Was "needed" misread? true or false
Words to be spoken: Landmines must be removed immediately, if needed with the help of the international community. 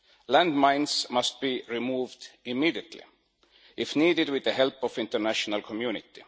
false